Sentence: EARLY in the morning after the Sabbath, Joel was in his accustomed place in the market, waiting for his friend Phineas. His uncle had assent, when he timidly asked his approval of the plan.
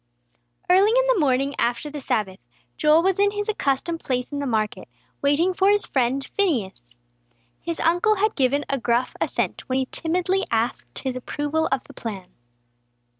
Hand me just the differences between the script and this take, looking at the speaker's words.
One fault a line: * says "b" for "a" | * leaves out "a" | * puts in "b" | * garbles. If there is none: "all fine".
* puts in "given a gruff"